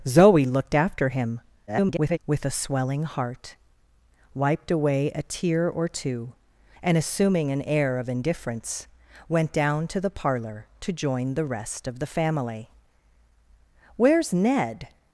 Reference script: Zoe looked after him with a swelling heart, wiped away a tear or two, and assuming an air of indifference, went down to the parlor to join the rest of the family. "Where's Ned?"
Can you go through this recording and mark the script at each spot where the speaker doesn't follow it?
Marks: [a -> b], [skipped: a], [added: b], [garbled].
Zoe looked after him [garbled] with a swelling heart, wiped away a tear or two, and assuming an air of indifference, went down to the parlor to join the rest of the family. "Where's Ned?"